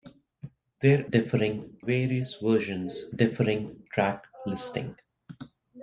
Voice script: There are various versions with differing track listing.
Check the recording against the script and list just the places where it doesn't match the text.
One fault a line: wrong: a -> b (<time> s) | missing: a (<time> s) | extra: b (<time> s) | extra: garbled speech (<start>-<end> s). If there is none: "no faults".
wrong: are -> differing (1.1 s)
missing: with (3.1 s)